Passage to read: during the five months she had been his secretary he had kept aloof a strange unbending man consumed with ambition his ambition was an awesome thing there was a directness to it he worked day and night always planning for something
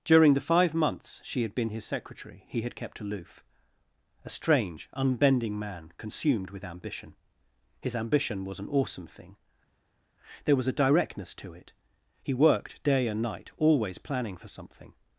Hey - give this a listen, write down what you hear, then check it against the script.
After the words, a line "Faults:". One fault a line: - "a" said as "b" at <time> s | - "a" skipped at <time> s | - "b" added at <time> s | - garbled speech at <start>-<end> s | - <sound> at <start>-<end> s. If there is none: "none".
during the five months she had been his secretary he had kept aloof a strange unbending man consumed with ambition his ambition was an awesome thing there was a directness to it he worked day and night always planning for something
Faults:
none